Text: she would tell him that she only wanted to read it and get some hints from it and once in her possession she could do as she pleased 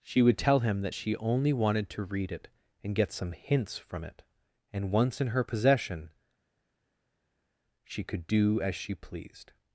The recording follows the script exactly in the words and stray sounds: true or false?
true